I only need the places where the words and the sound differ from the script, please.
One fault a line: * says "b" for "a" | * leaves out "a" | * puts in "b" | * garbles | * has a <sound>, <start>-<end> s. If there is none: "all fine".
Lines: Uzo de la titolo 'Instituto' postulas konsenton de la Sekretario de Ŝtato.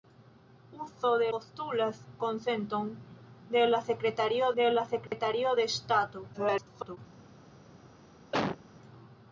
* says "postulas konsenton de la Sekretario" for "la titolo Instituto postulas konsenton"
* has a dropout, 5.1-5.1 s
* garbles
* has a cough, 8.3-8.6 s